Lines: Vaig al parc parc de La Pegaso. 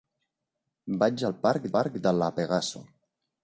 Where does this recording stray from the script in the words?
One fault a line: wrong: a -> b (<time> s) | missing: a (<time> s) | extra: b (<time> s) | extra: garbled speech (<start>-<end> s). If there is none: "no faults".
no faults